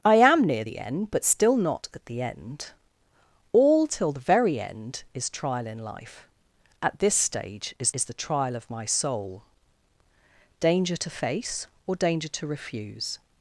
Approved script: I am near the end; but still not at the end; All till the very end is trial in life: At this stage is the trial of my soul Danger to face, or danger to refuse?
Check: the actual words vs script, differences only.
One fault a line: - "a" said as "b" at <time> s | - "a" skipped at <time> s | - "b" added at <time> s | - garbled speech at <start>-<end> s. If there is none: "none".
- "is" added at 7.9 s